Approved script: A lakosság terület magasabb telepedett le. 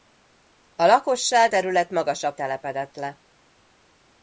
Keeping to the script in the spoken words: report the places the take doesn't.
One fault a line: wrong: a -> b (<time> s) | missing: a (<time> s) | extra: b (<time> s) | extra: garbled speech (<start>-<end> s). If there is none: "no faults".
no faults